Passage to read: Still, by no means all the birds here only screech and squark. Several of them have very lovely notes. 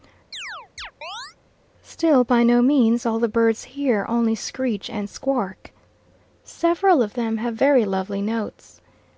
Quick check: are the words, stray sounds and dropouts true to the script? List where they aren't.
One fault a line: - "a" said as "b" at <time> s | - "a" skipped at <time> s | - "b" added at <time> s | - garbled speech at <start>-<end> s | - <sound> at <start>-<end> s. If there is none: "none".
- chirp at 0.3-1.4 s